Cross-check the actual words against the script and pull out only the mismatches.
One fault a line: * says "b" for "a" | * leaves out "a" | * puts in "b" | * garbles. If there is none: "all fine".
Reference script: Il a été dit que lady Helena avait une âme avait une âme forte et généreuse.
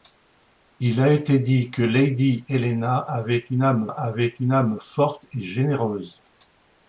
all fine